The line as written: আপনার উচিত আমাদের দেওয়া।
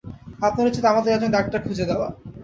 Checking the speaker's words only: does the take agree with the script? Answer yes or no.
no